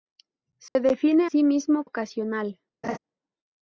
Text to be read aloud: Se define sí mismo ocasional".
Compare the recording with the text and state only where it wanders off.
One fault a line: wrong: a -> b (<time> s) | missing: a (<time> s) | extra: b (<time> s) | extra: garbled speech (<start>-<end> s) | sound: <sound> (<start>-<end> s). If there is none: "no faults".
sound: dropout (0.7-0.8 s)
sound: laugh (2.8-3.0 s)